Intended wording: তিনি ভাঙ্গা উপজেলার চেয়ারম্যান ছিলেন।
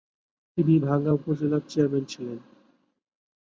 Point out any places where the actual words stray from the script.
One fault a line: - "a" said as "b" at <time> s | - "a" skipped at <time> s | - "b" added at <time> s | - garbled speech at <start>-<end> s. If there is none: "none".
none